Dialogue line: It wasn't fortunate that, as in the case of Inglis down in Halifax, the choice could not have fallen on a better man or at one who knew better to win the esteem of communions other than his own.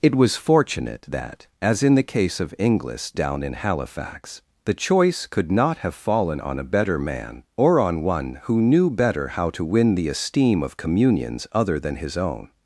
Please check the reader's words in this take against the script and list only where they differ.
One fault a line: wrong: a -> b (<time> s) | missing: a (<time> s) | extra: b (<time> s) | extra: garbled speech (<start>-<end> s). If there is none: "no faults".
wrong: wasn't -> was (0.1 s)
wrong: at -> on (7.8 s)
extra: how (9.3 s)